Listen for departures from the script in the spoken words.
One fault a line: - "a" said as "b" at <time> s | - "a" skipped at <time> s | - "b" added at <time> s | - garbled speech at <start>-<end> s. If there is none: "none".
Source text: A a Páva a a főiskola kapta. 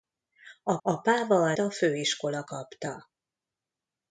none